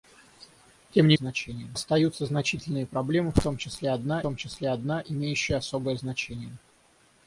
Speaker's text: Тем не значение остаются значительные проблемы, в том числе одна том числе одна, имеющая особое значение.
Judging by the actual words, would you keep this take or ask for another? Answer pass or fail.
pass